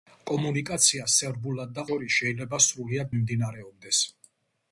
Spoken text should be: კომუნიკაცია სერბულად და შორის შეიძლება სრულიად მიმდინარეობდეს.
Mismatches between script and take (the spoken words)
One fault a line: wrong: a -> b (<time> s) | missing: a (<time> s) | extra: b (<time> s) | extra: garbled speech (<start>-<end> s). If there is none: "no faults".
no faults